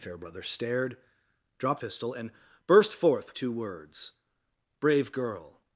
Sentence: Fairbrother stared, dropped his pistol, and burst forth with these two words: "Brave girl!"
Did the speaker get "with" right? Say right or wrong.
wrong